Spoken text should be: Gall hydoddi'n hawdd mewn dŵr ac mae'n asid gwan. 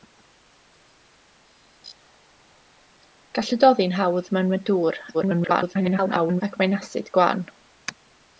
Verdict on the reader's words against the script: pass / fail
fail